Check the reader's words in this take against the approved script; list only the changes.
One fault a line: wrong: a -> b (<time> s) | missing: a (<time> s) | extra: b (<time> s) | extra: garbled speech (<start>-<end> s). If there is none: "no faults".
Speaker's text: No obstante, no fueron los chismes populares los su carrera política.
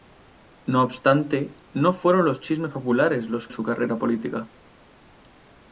no faults